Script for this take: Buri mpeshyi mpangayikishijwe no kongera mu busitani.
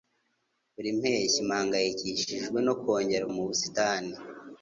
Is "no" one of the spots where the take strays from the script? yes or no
no